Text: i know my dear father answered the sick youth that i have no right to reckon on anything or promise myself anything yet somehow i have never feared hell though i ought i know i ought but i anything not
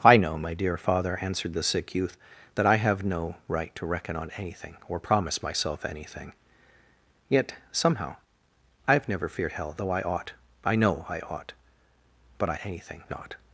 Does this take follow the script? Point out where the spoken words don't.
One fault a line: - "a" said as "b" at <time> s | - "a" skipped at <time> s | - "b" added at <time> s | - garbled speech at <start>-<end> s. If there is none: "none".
none